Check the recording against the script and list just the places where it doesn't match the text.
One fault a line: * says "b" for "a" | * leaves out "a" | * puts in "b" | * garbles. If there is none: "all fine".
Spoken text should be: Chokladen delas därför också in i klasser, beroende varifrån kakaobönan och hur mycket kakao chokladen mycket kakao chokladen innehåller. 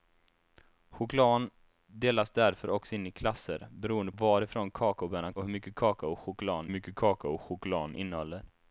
all fine